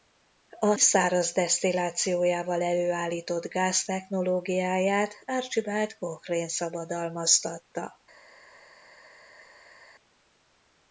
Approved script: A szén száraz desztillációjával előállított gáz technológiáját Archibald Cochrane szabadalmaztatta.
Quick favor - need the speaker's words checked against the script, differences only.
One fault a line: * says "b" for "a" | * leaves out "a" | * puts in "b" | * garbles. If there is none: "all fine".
* leaves out "szén"